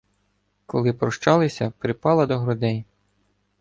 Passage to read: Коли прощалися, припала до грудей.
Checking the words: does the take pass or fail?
pass